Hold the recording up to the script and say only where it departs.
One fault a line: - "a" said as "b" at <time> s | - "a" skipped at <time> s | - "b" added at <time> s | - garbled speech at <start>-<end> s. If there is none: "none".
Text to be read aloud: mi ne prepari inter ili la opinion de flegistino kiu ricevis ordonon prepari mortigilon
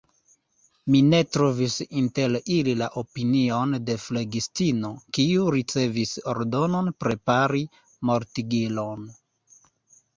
- "prepari" said as "trovis" at 1.4 s